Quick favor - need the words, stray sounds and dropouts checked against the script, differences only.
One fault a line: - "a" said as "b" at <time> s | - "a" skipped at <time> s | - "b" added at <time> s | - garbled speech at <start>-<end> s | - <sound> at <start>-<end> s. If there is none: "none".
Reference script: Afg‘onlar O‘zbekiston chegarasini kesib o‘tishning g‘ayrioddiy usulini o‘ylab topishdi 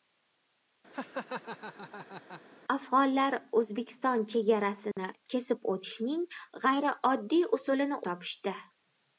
- laugh at 0.9-2.4 s
- dropout at 4.9-5.0 s
- "o‘ylab" skipped at 8.0 s